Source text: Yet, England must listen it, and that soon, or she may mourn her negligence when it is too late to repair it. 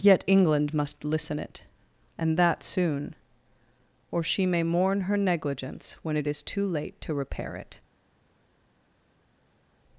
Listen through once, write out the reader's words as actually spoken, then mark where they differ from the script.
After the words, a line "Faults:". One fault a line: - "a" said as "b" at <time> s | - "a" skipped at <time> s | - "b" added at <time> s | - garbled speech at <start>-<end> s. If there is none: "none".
Yet, England must listen it, and that soon, or she may mourn her negligence when it is too late to repair it.
Faults:
none